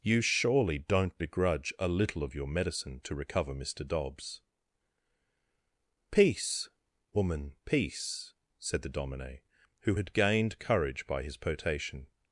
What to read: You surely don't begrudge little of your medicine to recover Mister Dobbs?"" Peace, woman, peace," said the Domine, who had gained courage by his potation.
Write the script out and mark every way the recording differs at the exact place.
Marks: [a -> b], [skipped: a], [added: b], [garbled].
You surely don't begrudge [added: a] little of your medicine to recover Mister Dobbs?"" Peace, woman, peace," said the Domine, who had gained courage by his potation.